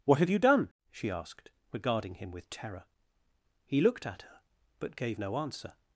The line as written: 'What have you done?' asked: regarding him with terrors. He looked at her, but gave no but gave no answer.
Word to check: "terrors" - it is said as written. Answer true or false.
false